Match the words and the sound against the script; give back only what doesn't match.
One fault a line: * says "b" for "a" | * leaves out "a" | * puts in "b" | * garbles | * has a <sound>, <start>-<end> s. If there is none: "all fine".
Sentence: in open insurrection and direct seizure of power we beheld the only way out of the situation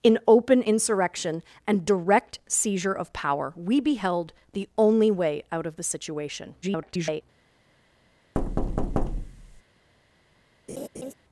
* garbles
* has a thud, 8.3-9.6 s
* has a laugh, 10.7-11.1 s